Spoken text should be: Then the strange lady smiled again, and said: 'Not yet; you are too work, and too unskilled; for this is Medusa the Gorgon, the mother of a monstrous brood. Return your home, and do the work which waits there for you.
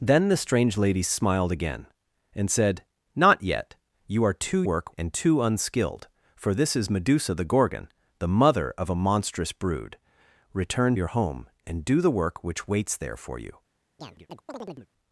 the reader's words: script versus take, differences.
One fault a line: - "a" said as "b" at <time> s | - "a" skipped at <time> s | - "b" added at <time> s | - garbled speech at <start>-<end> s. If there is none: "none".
none